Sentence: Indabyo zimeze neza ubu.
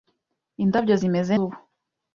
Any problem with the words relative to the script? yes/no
yes